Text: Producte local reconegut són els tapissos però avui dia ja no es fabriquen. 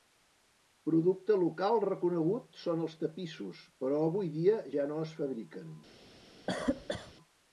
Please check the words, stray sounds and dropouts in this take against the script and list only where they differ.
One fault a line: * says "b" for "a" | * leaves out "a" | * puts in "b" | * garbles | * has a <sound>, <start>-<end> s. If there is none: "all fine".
* has a cough, 6.5-7.1 s